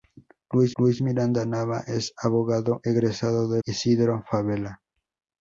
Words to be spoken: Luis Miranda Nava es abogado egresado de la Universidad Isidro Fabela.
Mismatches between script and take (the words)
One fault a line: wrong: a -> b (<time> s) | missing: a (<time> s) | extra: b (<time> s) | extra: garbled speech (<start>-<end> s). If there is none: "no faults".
extra: luis (0.8 s)
missing: la Universidad (3.6 s)